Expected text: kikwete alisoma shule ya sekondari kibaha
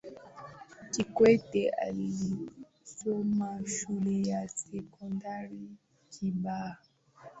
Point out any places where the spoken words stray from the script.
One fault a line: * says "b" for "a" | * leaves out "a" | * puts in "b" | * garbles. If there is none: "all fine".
all fine